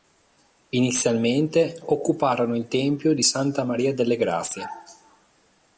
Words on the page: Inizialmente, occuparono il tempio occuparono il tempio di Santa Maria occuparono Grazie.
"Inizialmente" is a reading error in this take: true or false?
false